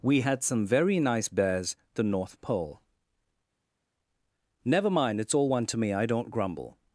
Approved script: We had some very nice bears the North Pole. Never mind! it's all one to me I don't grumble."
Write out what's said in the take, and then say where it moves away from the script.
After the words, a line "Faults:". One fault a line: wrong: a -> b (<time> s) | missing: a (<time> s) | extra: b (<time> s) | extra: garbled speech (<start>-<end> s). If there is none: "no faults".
We had some very nice bears the North Pole. Never mind! it's all one to me I don't grumble."
Faults:
no faults